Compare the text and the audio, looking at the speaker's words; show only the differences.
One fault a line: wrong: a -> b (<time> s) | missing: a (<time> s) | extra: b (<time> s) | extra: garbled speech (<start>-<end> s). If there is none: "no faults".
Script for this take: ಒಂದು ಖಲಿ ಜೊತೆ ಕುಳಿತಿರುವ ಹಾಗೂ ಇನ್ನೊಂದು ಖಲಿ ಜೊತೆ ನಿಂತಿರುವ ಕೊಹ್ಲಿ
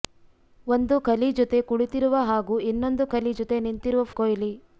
no faults